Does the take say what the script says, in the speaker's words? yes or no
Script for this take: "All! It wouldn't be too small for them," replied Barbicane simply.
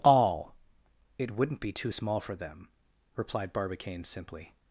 yes